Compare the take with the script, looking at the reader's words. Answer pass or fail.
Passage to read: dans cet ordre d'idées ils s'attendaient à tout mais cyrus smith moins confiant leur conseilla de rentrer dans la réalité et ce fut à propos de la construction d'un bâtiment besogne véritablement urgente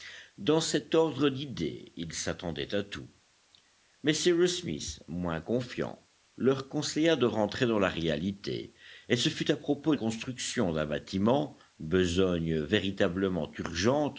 fail